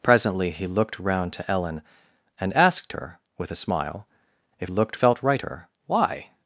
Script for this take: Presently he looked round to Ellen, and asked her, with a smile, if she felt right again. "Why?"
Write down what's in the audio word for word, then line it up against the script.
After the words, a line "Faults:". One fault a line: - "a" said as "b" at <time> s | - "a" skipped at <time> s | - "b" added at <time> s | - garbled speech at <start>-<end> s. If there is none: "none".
Presently he looked round to Ellen, and asked her, with a smile, if looked felt right her. "Why?"
Faults:
- "she" said as "looked" at 4.7 s
- "again" said as "her" at 5.4 s